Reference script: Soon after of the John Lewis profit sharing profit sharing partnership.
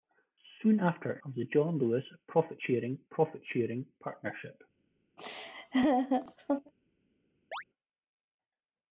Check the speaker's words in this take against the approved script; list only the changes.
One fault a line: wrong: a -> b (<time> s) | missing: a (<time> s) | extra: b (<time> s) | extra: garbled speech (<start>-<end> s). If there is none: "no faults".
no faults